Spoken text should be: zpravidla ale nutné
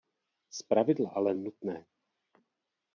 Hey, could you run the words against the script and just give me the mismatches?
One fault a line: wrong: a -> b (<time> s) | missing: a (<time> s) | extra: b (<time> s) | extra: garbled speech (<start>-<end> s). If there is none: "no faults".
no faults